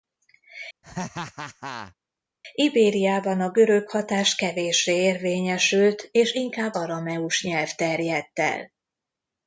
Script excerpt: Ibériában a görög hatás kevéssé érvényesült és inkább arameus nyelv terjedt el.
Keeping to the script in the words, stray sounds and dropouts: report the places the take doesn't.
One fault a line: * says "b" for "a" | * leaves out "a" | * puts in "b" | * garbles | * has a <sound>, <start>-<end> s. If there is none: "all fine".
* has a laugh, 0.8-1.9 s